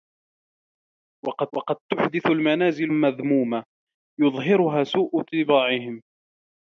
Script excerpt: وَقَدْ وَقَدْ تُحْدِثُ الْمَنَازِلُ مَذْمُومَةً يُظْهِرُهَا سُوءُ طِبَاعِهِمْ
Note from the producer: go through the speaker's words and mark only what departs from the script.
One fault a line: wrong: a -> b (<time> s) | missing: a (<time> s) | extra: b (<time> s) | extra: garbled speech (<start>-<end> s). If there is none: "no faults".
no faults